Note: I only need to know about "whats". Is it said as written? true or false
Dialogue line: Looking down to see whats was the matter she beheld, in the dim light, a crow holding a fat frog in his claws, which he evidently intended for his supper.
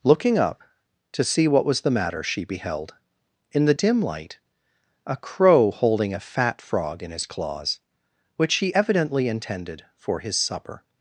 false